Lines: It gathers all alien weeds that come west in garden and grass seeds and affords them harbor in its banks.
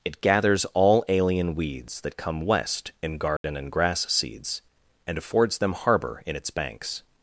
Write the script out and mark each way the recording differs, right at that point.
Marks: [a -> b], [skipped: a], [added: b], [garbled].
It gathers all alien weeds that come west in garden and grass seeds and affords them harbor in its banks.